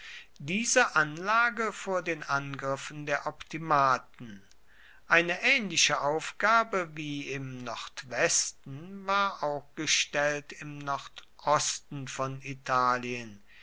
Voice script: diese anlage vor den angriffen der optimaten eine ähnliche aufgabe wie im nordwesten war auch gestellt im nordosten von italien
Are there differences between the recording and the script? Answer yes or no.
no